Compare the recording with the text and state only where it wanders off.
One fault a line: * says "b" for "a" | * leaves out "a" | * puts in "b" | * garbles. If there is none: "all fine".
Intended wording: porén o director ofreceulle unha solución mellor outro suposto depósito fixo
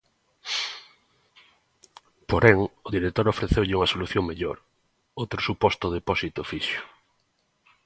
all fine